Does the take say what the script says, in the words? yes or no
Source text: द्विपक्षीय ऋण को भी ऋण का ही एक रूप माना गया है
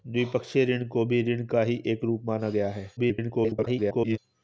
no